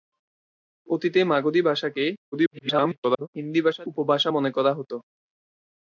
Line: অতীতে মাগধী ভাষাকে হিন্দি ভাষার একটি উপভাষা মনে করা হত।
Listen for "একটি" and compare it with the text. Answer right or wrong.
wrong